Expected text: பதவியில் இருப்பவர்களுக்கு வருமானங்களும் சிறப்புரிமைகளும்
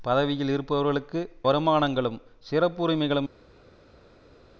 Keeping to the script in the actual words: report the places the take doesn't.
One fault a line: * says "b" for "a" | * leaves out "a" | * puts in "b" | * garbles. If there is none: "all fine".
all fine